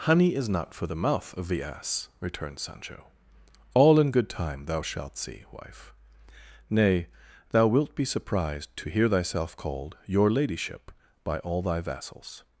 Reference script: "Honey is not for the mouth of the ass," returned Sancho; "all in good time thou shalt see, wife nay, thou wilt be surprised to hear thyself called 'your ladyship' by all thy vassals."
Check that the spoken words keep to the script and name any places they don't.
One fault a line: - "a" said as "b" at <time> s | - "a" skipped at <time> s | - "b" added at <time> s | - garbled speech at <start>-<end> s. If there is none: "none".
none